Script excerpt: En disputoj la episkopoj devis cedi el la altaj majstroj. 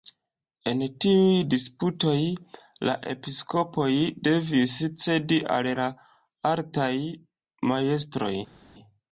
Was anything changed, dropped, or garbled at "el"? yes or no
yes